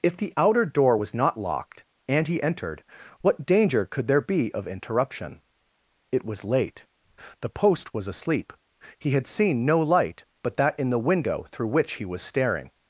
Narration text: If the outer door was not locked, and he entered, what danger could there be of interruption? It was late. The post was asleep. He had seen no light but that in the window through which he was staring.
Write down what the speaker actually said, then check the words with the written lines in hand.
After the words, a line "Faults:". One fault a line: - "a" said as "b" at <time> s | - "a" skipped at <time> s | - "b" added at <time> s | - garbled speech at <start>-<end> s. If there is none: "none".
If the outer door was not locked, and he entered, what danger could there be of interruption? It was late. The post was asleep. He had seen no light but that in the window through which he was staring.
Faults:
none